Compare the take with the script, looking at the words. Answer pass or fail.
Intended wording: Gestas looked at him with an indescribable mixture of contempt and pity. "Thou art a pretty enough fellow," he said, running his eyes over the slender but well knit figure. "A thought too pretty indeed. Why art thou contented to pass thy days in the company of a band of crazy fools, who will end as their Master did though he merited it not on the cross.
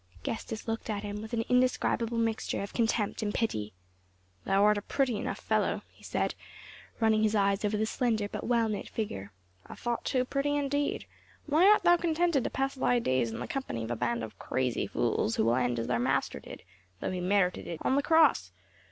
fail